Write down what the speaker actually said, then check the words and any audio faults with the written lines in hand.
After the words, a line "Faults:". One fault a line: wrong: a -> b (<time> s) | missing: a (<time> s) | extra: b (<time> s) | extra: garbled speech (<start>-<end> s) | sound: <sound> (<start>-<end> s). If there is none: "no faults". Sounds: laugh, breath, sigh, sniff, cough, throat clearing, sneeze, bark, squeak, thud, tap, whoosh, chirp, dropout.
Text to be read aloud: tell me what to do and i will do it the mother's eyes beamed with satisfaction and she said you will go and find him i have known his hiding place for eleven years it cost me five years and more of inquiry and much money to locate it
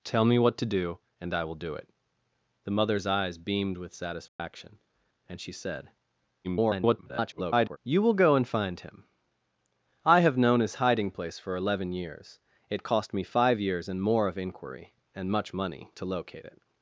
tell me what to do and i will do it the mother's eyes beamed with satisfaction and she said [garbled] you will go and find him i have known his hiding place for eleven years it cost me five years and more of inquiry and much money to locate it
Faults:
sound: dropout (4.3-4.4 s)
extra: garbled speech (6.4-7.8 s)